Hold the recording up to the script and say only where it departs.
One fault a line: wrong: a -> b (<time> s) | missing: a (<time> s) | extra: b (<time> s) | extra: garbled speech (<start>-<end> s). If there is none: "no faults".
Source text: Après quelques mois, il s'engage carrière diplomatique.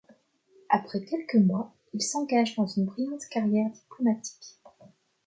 extra: dans une brillante (2.5 s)